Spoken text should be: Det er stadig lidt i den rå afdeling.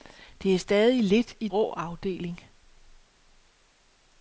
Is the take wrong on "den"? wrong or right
wrong